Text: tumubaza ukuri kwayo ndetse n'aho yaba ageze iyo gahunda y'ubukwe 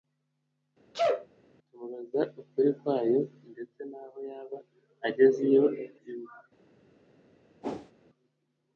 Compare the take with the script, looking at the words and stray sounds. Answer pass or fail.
fail